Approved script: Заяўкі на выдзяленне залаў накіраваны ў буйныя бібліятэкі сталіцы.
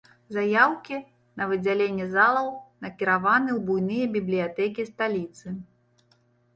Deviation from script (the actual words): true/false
false